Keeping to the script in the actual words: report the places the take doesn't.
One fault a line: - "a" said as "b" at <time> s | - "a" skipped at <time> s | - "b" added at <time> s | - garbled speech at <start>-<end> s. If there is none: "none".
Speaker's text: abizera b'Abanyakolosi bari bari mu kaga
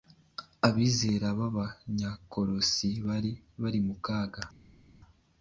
none